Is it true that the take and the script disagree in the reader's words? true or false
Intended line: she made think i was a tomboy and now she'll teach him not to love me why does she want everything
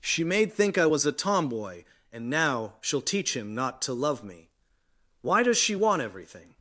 false